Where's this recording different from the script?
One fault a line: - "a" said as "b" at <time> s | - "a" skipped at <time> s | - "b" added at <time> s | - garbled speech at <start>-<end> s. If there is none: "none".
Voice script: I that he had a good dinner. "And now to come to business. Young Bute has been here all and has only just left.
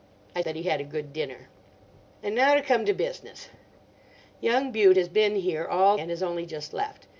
none